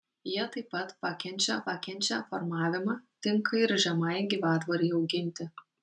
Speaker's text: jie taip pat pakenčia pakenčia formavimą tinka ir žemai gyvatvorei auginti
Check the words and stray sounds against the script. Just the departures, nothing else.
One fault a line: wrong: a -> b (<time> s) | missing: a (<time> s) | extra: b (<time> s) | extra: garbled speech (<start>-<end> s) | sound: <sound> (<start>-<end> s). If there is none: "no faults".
no faults